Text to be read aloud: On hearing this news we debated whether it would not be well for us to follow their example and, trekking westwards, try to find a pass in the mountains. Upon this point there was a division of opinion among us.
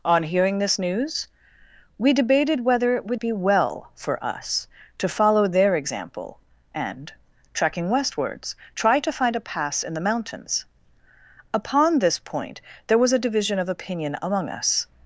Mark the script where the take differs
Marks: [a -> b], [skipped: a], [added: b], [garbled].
On hearing this news we debated whether it would [skipped: not] be well for us to follow their example and, trekking westwards, try to find a pass in the mountains. Upon this point there was a division of opinion among us.